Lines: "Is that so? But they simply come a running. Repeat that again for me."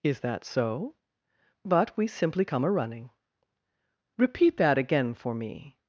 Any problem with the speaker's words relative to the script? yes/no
yes